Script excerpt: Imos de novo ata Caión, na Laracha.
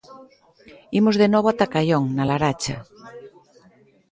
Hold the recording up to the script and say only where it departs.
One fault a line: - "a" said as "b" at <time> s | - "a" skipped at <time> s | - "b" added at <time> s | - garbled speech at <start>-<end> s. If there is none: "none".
none